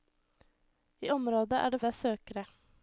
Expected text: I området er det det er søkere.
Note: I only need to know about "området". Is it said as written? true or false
true